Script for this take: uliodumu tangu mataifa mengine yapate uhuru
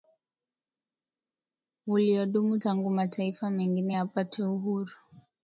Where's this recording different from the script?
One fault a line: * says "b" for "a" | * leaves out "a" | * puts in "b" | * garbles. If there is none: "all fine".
all fine